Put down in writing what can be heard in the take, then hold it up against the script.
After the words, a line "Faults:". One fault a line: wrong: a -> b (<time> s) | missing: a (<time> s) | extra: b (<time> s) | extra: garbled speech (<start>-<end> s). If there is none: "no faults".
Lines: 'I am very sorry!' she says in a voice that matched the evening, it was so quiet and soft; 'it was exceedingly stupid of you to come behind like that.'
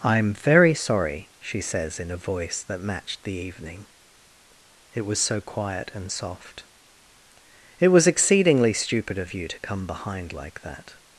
'I am very sorry!' she says in a voice that matched the evening, it was so quiet and soft; 'it was exceedingly stupid of you to come behind like that.'
Faults:
no faults